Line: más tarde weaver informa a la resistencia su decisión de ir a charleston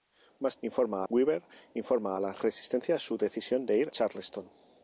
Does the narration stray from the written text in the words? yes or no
yes